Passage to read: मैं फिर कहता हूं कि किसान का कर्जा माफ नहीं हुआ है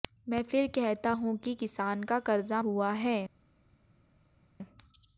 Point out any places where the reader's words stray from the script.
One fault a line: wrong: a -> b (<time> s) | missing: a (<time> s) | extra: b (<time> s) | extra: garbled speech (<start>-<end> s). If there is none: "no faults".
missing: माफ नहीं (2.6 s)